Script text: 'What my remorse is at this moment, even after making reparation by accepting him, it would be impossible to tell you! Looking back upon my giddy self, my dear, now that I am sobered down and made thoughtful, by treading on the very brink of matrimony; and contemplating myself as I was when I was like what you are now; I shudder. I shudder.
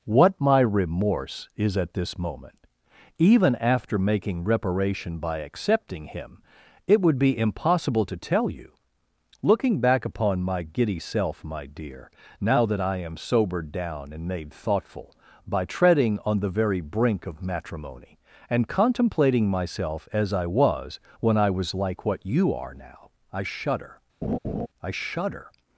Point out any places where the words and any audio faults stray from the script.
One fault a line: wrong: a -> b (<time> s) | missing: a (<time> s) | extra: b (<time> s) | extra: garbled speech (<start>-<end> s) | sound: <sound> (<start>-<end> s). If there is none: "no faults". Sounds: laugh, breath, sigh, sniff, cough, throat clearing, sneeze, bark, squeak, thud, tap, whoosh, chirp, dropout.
sound: laugh (24.2-24.7 s)